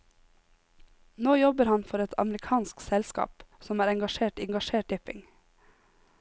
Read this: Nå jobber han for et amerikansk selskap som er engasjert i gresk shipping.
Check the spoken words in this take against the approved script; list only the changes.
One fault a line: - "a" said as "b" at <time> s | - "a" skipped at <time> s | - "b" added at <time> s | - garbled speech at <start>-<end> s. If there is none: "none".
- "gresk" said as "engasjert" at 4.5 s